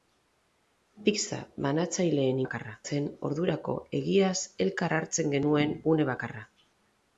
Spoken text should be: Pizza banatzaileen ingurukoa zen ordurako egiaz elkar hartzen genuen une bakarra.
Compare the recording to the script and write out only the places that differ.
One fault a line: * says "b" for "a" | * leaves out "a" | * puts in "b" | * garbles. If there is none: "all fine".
* says "bakarra" for "ingurukoa"